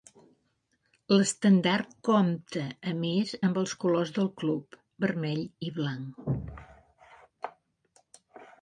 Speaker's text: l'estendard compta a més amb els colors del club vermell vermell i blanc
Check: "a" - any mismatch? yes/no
no